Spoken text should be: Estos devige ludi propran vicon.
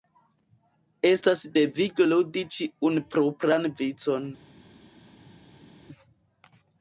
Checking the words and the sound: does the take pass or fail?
fail